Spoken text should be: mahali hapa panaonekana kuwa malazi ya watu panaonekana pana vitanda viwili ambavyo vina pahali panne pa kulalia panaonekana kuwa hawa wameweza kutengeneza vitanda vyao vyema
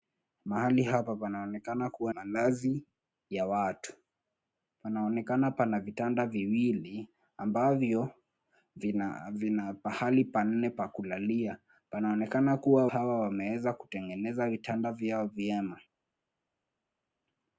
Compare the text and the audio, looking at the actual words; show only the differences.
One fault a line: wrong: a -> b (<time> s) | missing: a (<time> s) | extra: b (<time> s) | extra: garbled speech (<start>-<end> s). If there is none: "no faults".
no faults